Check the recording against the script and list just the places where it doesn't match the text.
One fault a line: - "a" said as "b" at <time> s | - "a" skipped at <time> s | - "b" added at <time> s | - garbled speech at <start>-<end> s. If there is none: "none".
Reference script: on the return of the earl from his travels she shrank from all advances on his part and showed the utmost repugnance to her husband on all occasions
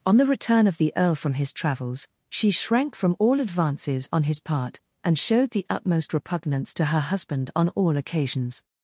none